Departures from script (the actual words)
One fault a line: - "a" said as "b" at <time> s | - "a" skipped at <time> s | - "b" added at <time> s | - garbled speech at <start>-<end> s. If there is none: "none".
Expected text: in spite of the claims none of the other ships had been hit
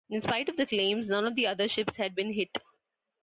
none